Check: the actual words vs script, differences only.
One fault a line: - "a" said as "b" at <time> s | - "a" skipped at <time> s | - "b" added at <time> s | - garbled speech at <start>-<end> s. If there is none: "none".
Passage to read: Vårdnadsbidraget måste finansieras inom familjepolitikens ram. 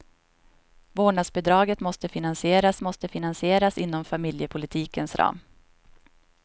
- "måste finansieras" added at 2.8 s